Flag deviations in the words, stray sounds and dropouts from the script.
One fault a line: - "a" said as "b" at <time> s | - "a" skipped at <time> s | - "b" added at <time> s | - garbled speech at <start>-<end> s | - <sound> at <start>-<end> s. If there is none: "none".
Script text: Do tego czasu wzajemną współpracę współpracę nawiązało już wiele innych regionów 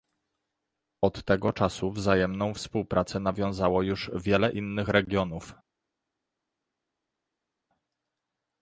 - "Do" said as "Od" at 1.0 s
- "współpracę" skipped at 3.2 s